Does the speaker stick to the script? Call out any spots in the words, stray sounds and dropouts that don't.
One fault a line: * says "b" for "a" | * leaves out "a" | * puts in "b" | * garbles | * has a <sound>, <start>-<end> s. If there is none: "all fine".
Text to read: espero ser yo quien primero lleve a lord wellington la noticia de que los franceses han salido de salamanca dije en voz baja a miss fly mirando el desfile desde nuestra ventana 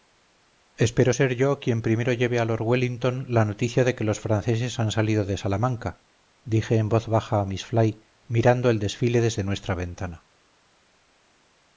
all fine